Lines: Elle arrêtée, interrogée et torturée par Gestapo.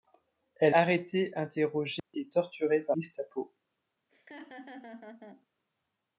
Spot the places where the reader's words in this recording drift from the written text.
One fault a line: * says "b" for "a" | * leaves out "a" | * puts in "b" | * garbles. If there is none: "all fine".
all fine